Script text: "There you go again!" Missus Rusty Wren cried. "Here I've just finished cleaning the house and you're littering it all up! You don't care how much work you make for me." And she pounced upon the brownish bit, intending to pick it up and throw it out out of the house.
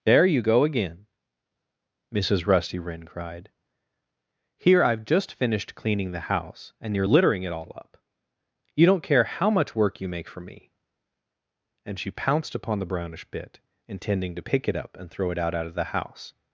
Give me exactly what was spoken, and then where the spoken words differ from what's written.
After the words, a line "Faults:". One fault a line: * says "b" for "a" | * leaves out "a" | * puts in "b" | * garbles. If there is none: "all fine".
"There you go again!" Missus Rusty Wren cried. "Here I've just finished cleaning the house and you're littering it all up! You don't care how much work you make for me." And she pounced upon the brownish bit, intending to pick it up and throw it out out of the house.
Faults:
all fine